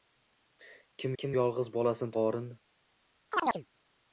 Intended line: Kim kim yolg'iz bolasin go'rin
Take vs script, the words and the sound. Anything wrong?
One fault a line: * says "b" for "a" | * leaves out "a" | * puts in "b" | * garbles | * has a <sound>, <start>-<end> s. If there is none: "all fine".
* has a chirp, 3.3-3.7 s